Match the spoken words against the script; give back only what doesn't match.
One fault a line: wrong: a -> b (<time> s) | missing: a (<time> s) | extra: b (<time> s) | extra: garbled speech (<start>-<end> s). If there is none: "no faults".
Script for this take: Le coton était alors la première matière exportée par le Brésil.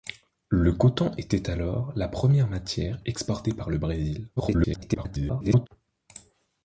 extra: garbled speech (4.4-5.7 s)